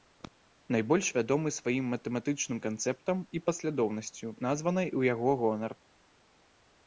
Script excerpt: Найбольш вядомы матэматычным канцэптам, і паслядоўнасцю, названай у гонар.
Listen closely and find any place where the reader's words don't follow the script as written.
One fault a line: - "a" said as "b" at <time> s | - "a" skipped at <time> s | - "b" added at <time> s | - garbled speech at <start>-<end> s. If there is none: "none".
- "сваім" added at 1.6 s
- "яго" added at 5.1 s